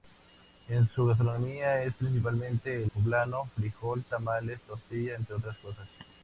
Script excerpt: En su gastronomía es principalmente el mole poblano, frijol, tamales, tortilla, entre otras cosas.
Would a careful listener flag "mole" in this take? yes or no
yes